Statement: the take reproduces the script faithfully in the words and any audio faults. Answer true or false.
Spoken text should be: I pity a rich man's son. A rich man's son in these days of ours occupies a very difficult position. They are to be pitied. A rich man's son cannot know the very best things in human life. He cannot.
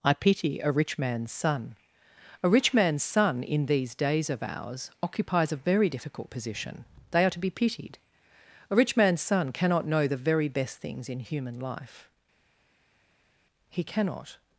true